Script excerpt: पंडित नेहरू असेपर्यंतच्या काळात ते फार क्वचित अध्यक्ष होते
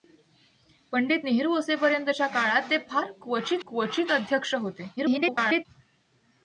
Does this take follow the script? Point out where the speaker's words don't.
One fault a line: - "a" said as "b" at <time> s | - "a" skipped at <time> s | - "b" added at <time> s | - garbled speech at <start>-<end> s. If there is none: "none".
- "क्वचित" added at 3.7 s
- garbled speech at 5.0-5.7 s